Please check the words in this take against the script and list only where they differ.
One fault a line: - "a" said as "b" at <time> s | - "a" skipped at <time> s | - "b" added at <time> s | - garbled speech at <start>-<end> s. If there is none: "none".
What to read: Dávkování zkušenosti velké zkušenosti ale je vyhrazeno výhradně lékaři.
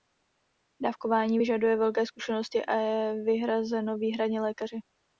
- "zkušenosti" said as "vyžaduje" at 1.4 s
- "ale" said as "a" at 2.6 s